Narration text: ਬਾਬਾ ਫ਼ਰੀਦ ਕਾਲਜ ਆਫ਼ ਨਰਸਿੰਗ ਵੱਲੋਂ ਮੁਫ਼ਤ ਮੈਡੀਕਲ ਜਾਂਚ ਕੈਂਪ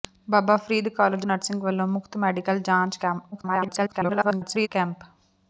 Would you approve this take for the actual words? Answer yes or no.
no